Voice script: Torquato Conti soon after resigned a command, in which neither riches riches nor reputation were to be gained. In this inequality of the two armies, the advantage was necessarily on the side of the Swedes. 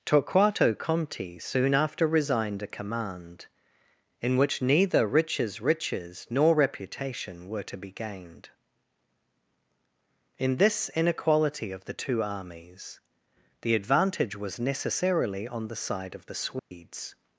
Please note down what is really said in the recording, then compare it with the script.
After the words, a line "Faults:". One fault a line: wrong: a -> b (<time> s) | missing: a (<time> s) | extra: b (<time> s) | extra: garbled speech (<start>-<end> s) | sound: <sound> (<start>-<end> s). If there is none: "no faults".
Torquato Conti soon after resigned a command, in which neither riches riches nor reputation were to be gained. In this inequality of the two armies, the advantage was necessarily on the side of the Swedes.
Faults:
sound: dropout (16.6-16.7 s)